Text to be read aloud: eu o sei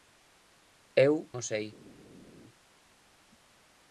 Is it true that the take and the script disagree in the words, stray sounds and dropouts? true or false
false